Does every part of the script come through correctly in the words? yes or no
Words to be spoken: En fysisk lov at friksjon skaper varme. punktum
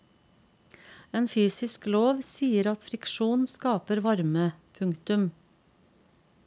no